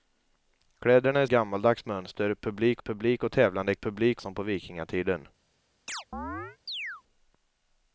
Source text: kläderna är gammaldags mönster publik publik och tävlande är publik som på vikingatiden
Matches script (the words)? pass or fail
pass